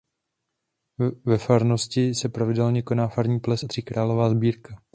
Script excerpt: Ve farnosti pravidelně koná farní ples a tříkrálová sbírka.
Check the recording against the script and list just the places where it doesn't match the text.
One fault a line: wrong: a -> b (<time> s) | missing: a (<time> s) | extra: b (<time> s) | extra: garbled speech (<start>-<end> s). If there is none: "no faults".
extra: se (2.1 s)